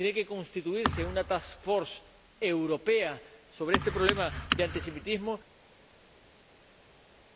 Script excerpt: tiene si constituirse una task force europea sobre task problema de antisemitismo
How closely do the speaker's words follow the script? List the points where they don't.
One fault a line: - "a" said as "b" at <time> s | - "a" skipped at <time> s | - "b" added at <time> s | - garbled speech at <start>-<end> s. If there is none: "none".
- "si" said as "que" at 0.1 s
- "task" said as "este" at 3.8 s